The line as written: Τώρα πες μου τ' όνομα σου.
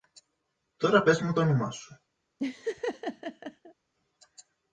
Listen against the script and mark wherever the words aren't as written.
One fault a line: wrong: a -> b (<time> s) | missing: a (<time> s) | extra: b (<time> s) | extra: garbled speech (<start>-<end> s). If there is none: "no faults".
no faults